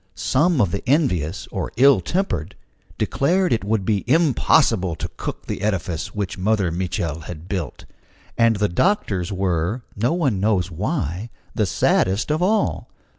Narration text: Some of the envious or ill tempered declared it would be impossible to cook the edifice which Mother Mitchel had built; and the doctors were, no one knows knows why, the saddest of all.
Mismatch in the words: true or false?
true